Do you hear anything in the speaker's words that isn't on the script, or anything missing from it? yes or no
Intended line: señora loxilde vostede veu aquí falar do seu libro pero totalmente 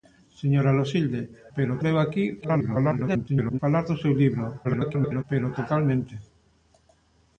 yes